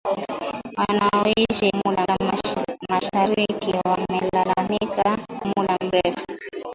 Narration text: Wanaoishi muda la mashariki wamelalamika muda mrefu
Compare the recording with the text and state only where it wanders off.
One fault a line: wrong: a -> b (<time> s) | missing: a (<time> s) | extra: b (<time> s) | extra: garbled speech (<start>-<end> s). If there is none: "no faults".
no faults